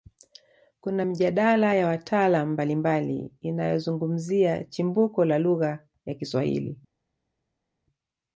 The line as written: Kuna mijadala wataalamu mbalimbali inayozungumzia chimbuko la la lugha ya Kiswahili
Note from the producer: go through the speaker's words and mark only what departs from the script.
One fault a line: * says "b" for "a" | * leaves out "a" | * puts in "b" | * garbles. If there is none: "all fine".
* puts in "ya"
* leaves out "la"